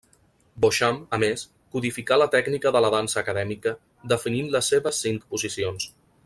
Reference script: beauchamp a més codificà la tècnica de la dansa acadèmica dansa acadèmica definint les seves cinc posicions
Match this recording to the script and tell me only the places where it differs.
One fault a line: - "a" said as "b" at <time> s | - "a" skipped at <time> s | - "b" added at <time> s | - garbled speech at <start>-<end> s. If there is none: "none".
- "dansa acadèmica" skipped at 3.8 s